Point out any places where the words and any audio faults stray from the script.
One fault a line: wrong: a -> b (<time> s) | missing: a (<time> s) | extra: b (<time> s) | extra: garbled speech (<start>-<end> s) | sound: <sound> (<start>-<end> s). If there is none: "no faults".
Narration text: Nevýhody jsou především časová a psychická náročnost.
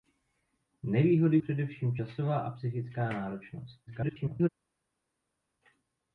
missing: jsou (1.4 s)
extra: garbled speech (3.9-4.5 s)